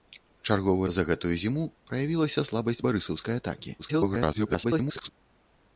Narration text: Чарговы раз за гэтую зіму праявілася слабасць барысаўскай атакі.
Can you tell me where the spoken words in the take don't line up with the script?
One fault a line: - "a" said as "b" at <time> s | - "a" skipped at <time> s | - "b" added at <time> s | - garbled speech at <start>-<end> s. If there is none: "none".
- "раз" skipped at 0.9 s
- garbled speech at 3.8-5.1 s